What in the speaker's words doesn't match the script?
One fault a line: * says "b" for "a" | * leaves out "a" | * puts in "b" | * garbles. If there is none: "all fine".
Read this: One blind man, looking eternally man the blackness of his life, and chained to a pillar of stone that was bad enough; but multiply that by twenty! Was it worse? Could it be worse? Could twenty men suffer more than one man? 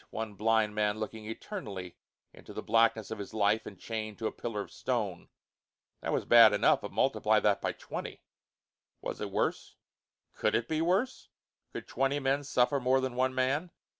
* says "into" for "man"